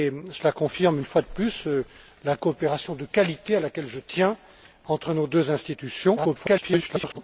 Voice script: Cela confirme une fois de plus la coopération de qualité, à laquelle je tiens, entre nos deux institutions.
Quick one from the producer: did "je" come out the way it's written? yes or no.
yes